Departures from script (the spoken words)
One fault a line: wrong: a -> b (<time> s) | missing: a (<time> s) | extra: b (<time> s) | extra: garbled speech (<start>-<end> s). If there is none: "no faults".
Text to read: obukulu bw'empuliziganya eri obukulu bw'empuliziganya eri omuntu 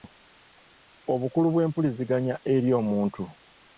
missing: obukulu bw'empuliziganya eri (2.7 s)